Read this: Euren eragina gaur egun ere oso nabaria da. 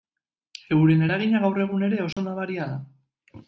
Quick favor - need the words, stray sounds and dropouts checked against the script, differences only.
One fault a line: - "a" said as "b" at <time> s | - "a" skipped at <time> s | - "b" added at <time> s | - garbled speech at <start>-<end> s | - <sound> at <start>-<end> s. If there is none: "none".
- dropout at 2.1-2.2 s